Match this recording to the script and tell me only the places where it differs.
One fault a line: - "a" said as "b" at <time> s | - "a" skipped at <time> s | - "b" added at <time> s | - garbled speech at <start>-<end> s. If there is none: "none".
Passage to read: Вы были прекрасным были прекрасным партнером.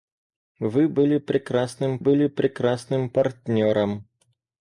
none